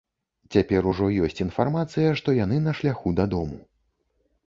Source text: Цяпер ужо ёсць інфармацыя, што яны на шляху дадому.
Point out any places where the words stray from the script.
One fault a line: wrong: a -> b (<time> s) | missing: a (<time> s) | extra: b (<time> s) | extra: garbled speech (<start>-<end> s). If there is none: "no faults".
no faults